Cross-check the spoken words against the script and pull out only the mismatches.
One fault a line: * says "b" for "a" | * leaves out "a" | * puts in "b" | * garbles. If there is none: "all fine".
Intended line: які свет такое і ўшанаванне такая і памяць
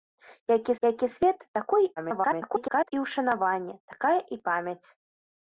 * puts in "які"
* garbles